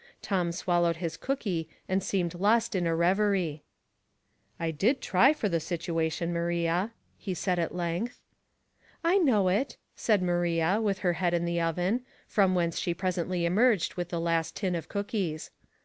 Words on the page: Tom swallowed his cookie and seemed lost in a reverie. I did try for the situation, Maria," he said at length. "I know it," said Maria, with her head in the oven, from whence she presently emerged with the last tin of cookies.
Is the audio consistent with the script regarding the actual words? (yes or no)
yes